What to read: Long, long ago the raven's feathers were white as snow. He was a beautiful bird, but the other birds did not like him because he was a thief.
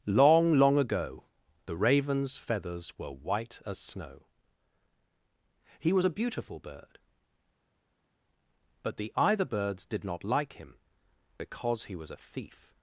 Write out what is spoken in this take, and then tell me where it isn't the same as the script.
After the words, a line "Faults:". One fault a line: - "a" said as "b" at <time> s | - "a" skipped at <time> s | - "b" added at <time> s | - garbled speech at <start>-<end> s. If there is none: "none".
Long, long ago the raven's feathers were white as snow. He was a beautiful bird, but the either birds did not like him because he was a thief.
Faults:
- "other" said as "either" at 9.2 s